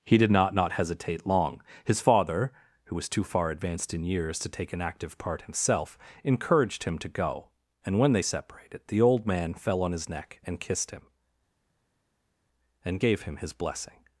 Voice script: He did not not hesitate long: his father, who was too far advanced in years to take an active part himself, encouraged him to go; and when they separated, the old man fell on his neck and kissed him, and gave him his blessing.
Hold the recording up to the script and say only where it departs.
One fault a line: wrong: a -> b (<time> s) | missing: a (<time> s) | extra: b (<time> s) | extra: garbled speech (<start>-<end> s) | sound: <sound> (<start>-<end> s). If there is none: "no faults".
no faults